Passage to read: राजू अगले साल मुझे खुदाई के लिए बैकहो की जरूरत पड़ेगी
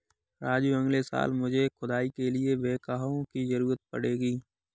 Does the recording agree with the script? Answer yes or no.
yes